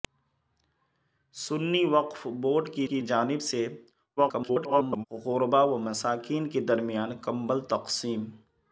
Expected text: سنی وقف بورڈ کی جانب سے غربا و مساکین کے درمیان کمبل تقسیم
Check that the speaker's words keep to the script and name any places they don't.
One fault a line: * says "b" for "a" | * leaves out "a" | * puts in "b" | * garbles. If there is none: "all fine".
* puts in "کی"
* garbles